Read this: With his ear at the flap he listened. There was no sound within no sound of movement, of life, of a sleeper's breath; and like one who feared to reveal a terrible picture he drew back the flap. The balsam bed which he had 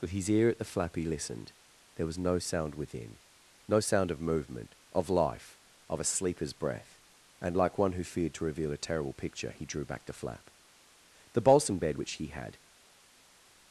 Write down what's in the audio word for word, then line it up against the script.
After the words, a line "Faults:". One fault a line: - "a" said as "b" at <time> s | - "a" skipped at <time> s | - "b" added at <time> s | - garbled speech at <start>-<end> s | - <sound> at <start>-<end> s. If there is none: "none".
With his ear at the flap he listened. There was no sound within no sound of movement, of life, of a sleeper's breath; and like one who feared to reveal a terrible picture he drew back the flap. The balsam bed which he had
Faults:
none